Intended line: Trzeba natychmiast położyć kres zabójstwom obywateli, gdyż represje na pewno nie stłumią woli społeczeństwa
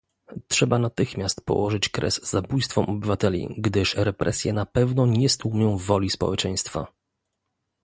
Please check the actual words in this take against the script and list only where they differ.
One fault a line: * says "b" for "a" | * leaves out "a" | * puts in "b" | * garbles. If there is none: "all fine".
all fine